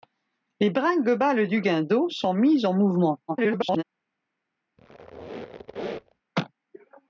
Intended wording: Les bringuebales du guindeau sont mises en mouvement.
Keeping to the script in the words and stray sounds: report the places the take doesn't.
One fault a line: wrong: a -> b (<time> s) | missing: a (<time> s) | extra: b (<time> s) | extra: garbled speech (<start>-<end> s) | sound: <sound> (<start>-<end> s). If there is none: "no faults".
extra: garbled speech (3.3-3.8 s)
sound: squeak (4.8-6.2 s)